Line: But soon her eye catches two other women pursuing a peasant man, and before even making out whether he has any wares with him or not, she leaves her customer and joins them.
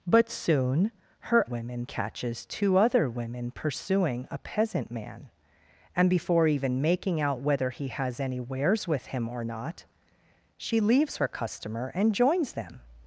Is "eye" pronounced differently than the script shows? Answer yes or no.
yes